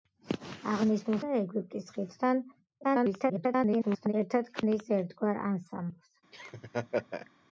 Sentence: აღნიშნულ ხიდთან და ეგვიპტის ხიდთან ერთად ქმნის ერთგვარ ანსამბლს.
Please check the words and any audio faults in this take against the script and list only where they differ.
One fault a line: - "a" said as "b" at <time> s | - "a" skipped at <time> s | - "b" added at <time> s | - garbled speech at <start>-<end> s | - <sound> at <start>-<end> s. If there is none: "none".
- "ხიდთან" skipped at 1.2 s
- garbled speech at 2.8-4.1 s
- laugh at 6.3-7.3 s